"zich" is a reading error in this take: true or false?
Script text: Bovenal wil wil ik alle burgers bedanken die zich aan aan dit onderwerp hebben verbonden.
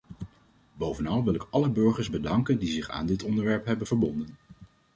false